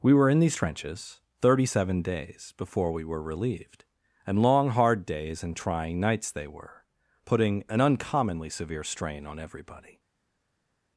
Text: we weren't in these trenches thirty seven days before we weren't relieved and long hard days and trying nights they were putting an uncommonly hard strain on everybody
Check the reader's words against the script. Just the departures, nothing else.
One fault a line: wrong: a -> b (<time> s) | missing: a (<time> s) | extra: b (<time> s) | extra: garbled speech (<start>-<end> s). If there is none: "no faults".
wrong: weren't -> were (0.1 s)
wrong: weren't -> were (3.0 s)
wrong: hard -> severe (8.5 s)